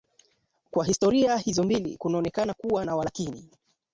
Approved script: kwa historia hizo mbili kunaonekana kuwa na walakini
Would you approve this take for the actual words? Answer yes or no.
yes